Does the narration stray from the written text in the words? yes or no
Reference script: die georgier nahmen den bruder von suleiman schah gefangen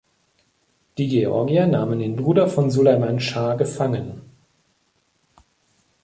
no